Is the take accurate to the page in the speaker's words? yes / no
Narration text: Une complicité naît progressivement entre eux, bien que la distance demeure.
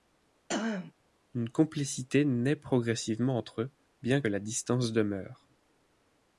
no